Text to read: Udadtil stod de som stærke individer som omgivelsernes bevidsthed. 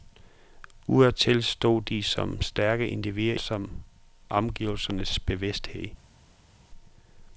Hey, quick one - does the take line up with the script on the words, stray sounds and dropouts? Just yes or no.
yes